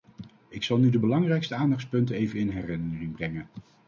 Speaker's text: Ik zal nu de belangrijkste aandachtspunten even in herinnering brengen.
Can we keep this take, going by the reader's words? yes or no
yes